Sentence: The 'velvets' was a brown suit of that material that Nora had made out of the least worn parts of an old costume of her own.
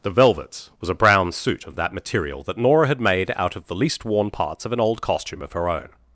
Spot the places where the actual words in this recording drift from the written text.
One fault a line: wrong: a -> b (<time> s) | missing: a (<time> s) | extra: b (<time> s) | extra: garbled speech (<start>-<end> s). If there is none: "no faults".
no faults